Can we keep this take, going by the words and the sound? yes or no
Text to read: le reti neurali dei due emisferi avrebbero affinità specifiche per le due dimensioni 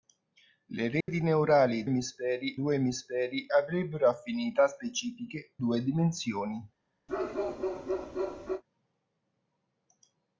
no